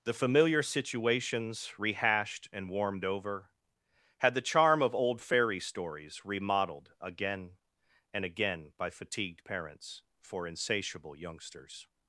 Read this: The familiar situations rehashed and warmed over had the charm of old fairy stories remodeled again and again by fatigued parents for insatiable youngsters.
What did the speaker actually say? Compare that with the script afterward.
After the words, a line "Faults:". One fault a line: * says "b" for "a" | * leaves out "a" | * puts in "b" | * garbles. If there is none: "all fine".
The familiar situations rehashed and warmed over had the charm of old fairy stories remodeled again and again by fatigued parents for insatiable youngsters.
Faults:
all fine